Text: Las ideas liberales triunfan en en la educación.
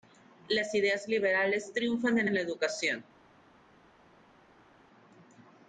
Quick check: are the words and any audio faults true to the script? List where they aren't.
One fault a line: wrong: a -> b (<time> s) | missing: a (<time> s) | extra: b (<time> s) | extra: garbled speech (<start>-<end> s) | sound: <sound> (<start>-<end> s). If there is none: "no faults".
no faults